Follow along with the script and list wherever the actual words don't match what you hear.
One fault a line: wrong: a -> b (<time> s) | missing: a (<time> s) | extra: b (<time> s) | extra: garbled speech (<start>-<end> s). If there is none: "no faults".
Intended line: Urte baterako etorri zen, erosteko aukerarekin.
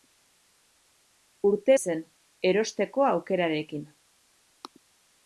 missing: baterako etorri (1.8 s)